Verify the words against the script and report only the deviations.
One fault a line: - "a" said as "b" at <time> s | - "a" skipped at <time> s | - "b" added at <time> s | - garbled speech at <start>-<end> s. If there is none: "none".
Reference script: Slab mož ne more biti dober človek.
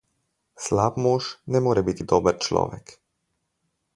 none